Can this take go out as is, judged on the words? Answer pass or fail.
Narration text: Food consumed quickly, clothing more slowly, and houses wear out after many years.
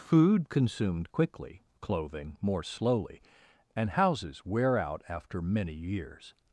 pass